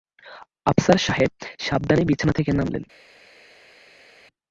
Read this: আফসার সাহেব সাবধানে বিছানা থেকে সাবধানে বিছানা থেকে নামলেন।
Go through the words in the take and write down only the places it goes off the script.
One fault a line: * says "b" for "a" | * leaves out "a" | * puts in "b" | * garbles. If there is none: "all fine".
* leaves out "সাবধানে বিছানা থেকে"